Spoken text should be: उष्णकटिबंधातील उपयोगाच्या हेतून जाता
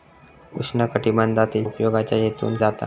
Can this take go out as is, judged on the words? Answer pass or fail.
pass